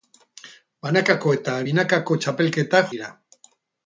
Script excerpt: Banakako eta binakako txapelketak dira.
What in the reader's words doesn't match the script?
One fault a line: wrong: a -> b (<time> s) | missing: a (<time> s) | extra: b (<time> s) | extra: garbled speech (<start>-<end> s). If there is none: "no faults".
no faults